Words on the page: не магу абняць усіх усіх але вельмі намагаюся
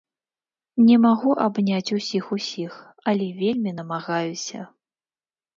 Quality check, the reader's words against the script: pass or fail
pass